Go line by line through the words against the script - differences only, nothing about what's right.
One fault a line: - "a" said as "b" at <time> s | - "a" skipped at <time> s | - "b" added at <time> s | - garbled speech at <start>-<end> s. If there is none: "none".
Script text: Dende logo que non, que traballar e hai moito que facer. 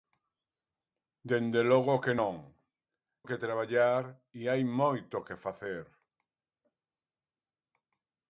none